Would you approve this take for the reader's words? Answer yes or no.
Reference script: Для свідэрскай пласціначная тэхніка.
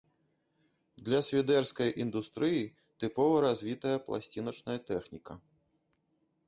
no